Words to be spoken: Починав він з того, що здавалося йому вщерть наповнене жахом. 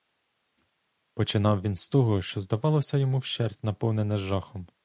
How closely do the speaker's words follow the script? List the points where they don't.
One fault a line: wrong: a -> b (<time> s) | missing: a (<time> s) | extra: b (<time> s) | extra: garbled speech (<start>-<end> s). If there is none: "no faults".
no faults